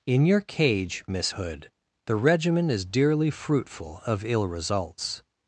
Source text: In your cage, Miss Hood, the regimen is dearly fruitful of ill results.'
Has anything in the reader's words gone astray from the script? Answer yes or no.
no